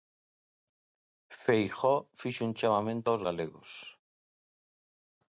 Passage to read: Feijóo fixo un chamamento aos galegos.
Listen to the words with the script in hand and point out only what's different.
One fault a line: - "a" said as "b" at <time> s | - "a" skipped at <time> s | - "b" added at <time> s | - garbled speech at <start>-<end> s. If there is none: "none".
none